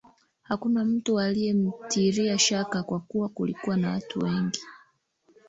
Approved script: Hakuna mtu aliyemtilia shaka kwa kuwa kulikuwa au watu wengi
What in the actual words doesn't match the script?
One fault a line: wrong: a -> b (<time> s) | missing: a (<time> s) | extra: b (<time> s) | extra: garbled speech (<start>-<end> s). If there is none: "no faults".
wrong: au -> na (3.8 s)